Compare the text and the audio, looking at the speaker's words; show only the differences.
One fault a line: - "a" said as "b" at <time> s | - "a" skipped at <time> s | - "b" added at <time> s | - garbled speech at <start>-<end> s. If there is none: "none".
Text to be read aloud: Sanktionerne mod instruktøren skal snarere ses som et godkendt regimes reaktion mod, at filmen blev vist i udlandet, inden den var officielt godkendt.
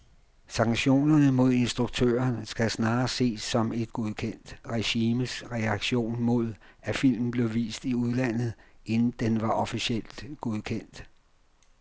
none